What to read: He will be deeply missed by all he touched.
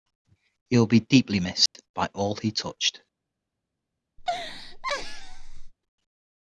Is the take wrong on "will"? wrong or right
right